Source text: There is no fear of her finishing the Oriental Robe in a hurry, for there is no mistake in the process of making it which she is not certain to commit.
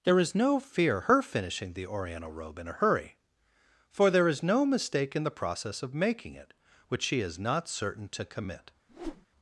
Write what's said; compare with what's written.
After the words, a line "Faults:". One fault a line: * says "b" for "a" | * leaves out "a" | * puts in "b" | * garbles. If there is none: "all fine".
There is no fear her finishing the Oriental Robe in a hurry, for there is no mistake in the process of making it which she is not certain to commit.
Faults:
* leaves out "of"